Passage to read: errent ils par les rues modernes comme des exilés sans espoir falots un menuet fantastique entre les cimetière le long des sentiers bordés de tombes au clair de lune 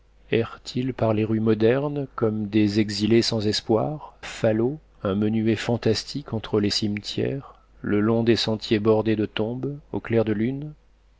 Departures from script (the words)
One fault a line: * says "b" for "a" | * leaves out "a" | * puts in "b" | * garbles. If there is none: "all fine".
all fine